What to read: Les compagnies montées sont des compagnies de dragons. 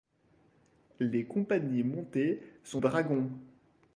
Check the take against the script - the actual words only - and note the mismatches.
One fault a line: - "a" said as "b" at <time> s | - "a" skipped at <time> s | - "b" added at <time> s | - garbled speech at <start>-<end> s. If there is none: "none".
- "des compagnies de" skipped at 2.8 s